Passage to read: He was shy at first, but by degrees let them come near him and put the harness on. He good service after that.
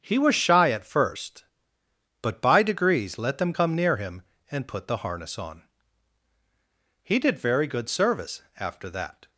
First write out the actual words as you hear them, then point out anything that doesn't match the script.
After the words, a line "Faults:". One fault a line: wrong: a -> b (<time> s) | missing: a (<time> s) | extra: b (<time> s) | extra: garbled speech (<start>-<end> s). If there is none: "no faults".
He was shy at first, but by degrees let them come near him and put the harness on. He did very good service after that.
Faults:
extra: did very (7.2 s)